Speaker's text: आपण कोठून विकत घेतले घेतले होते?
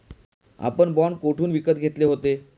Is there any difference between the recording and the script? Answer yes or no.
yes